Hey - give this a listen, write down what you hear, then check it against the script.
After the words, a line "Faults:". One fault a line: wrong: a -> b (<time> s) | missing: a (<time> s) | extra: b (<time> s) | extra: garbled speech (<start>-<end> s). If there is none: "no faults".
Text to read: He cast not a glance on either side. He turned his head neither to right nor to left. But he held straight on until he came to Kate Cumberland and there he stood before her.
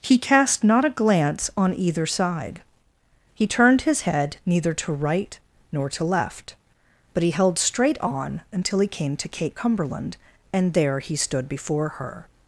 He cast not a glance on either side. He turned his head neither to right nor to left. But he held straight on until he came to Kate Cumberland and there he stood before her.
Faults:
no faults